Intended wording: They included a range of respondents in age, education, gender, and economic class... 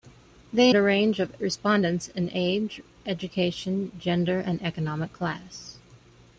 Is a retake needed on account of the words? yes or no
yes